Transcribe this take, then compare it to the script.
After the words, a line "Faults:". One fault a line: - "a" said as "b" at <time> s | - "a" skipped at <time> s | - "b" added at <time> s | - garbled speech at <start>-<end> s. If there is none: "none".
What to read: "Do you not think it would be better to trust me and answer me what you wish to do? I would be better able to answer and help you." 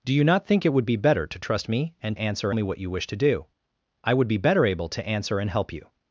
"Do you not think it would be better to trust me and answer me what you wish to do? I would be better able to answer and help you."
Faults:
none